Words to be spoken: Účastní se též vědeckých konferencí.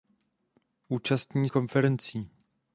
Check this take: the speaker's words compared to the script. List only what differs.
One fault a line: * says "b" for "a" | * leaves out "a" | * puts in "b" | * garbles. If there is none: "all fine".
* leaves out "se též vědeckých"